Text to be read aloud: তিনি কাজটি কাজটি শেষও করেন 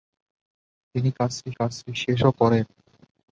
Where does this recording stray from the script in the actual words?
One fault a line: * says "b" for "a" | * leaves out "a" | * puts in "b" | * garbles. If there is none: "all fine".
all fine